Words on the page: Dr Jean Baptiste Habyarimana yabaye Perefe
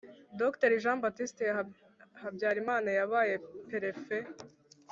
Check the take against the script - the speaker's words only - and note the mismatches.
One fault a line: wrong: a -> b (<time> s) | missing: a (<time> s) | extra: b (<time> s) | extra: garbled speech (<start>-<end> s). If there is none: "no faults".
no faults